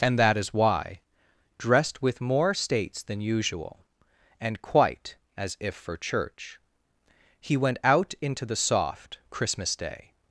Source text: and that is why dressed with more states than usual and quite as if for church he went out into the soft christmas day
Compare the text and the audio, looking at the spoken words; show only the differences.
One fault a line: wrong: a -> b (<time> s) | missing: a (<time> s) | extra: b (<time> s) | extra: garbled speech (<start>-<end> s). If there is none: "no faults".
no faults